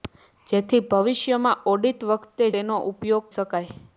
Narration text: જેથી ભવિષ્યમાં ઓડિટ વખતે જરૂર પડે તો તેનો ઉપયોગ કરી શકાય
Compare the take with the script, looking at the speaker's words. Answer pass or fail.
fail